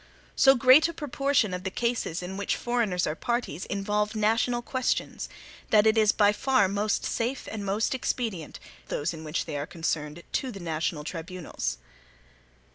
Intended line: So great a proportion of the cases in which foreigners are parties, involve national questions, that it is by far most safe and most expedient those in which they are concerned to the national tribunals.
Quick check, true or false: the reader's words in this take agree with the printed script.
true